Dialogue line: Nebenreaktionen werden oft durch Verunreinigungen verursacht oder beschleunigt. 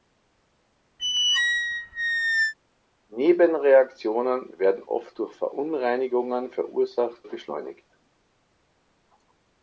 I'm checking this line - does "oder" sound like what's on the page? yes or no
no